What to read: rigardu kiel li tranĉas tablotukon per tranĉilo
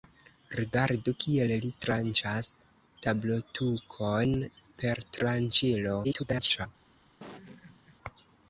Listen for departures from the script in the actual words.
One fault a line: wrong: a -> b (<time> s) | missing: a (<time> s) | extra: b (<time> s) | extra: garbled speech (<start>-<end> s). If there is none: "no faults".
extra: garbled speech (6.0-6.7 s)